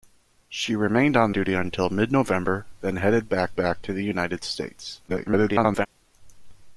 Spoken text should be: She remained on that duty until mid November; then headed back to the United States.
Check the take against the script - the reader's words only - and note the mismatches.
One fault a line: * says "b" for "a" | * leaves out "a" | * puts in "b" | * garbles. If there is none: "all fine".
* leaves out "that"
* puts in "back"
* garbles